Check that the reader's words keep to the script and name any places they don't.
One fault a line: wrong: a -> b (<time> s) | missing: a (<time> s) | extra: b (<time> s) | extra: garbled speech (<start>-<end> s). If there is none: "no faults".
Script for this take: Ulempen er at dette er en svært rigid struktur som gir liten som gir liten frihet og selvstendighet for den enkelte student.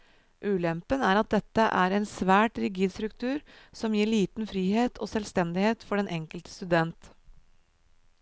missing: som gir liten (4.5 s)